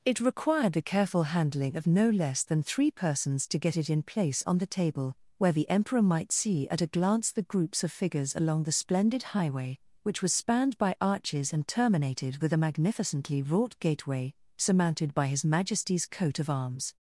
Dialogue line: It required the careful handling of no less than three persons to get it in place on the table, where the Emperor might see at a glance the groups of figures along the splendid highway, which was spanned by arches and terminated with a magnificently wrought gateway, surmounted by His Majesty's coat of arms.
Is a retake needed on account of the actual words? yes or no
no